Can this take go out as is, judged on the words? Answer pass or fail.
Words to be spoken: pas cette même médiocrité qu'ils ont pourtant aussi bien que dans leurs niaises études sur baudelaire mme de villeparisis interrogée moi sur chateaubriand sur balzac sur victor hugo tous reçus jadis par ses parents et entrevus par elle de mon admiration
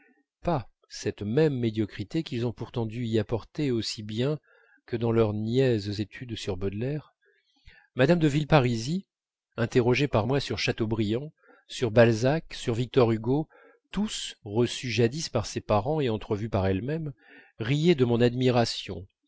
fail